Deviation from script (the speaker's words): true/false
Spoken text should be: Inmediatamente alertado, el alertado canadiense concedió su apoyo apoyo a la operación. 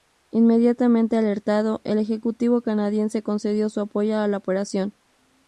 true